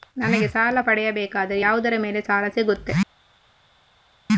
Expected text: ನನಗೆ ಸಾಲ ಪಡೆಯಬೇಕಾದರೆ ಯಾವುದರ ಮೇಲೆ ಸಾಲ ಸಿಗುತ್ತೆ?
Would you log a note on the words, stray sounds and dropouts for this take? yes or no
no